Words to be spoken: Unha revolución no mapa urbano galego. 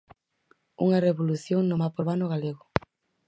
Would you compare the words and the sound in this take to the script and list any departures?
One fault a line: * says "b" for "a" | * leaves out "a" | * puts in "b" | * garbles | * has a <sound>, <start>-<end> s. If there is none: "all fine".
all fine